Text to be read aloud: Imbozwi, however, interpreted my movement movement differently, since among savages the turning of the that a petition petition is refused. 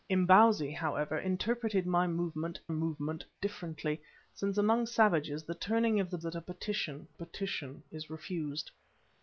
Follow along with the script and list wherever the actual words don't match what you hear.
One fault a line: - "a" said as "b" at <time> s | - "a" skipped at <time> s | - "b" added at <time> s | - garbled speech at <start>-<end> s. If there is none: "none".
none